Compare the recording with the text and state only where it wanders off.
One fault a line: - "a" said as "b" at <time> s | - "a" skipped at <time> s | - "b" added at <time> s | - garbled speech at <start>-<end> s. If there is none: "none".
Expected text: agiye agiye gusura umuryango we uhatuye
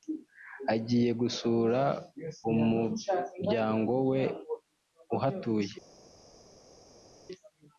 - "agiye" skipped at 1.1 s